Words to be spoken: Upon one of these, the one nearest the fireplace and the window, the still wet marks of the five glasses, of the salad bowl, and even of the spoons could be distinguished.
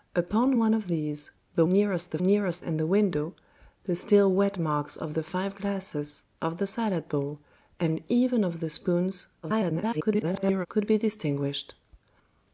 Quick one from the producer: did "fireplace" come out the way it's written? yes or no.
no